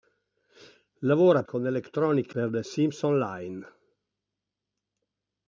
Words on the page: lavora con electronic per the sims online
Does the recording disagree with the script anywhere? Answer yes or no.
no